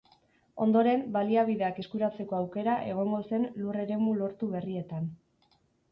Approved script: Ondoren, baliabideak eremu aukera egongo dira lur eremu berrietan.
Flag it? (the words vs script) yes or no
yes